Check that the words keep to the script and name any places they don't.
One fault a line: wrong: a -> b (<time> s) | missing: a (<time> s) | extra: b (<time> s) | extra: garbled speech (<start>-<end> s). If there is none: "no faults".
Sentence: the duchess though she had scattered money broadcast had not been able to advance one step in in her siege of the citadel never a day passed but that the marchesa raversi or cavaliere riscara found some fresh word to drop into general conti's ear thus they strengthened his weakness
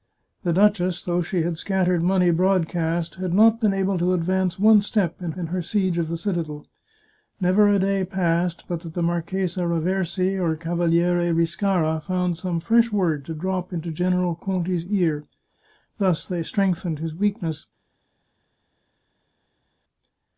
no faults